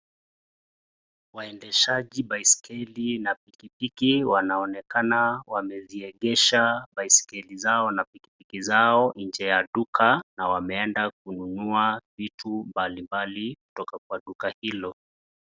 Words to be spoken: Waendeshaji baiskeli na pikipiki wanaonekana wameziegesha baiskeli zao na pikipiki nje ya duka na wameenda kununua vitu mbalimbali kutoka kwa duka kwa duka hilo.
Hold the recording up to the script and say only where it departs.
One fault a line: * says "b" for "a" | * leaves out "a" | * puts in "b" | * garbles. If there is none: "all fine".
* puts in "zao"
* leaves out "kwa duka"